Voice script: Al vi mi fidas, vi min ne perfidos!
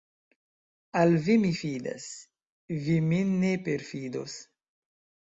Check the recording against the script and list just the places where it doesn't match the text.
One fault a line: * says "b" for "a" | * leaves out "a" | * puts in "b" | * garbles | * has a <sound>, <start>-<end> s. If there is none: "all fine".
all fine